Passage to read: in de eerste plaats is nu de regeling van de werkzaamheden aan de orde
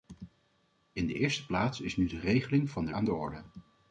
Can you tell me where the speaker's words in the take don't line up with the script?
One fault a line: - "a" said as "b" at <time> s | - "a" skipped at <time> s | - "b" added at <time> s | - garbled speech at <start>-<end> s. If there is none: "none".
- "werkzaamheden" skipped at 2.9 s